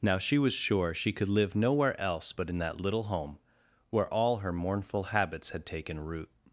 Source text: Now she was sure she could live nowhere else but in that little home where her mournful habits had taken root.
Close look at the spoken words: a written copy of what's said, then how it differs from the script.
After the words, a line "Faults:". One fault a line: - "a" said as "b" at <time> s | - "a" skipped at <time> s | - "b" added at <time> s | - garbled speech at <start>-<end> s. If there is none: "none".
Now she was sure she could live nowhere else but in that little home where all her mournful habits had taken root.
Faults:
- "all" added at 4.1 s